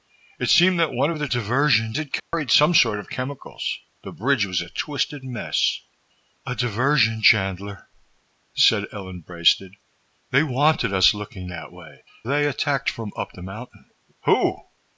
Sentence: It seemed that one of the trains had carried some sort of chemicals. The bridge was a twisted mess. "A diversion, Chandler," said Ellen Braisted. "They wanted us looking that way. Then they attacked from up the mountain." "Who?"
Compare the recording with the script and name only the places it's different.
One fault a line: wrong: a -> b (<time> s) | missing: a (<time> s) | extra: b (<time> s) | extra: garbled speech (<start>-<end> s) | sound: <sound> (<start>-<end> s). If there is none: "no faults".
wrong: trains -> diversion (1.3 s)
sound: dropout (2.2-2.3 s)
missing: Then (12.0 s)